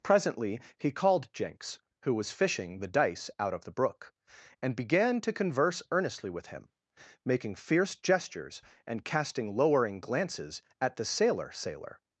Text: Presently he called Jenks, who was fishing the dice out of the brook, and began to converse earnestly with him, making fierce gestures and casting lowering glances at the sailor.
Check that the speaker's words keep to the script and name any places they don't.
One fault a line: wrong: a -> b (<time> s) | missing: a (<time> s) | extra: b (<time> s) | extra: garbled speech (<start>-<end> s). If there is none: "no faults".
extra: sailor (11.5 s)